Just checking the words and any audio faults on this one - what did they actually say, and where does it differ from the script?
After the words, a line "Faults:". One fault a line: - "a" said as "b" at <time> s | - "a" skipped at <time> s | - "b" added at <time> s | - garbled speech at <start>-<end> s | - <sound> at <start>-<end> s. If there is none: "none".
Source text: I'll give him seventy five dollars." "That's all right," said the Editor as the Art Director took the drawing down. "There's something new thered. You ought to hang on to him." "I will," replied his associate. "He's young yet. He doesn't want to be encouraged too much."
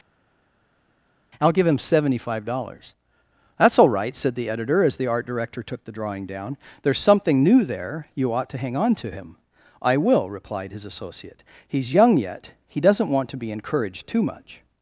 I'll give him seventy five dollars." "That's all right," said the Editor as the Art Director took the drawing down. "There's something new there. You ought to hang on to him." "I will," replied his associate. "He's young yet. He doesn't want to be encouraged too much."
Faults:
- "thered" said as "there" at 7.6 s